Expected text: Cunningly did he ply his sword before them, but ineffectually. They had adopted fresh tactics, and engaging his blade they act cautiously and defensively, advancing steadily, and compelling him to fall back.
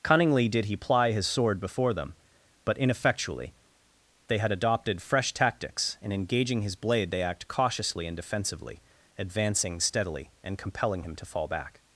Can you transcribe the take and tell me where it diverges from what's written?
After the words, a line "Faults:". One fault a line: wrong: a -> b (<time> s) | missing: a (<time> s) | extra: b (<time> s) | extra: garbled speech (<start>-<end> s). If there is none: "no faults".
Cunningly did he ply his sword before them, but ineffectually. They had adopted fresh tactics, and engaging his blade they act cautiously and defensively, advancing steadily, and compelling him to fall back.
Faults:
no faults